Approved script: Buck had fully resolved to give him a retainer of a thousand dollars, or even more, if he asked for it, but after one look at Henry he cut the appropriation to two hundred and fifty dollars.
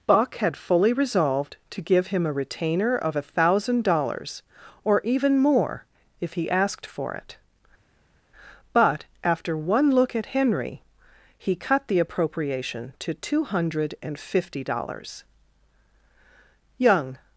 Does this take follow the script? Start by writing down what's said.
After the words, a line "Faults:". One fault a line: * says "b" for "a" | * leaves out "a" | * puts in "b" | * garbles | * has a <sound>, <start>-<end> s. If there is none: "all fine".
Buck had fully resolved to give him a retainer of a thousand dollars, or even more, if he asked for it, but after one look at Henry he cut the appropriation to two hundred and fifty dollars. Young
Faults:
* puts in "Young"